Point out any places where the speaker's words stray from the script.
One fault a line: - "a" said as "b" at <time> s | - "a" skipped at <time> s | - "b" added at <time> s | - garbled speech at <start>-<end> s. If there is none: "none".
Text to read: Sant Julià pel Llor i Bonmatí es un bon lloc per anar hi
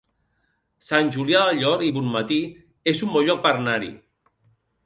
- "pel" said as "del" at 1.5 s